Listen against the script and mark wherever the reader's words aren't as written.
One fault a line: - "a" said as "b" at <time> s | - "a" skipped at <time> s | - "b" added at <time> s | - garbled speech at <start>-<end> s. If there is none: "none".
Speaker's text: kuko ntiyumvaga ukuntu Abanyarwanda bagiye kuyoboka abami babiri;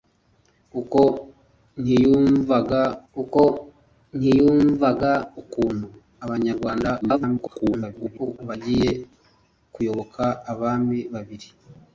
- "kuko ntiyumvaga" added at 3.1 s
- garbled speech at 7.0-8.4 s